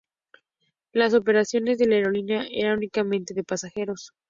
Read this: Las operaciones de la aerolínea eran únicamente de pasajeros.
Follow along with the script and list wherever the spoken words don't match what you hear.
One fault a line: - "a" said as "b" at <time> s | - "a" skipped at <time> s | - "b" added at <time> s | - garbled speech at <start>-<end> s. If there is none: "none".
none